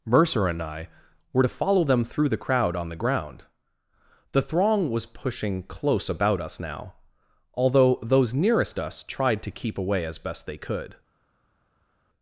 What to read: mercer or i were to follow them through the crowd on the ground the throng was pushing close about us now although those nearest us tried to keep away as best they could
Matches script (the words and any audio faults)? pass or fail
fail